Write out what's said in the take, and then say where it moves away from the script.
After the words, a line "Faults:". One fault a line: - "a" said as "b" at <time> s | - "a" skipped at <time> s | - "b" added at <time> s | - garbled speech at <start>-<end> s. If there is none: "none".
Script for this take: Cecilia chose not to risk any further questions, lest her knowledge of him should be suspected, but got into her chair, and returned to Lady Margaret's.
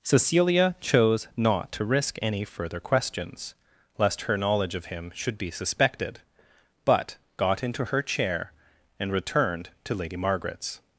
Cecilia chose not to risk any further questions, lest her knowledge of him should be suspected, but got into her chair, and returned to Lady Margaret's.
Faults:
none